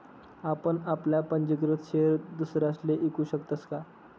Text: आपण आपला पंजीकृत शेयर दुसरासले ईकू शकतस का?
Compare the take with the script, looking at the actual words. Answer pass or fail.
pass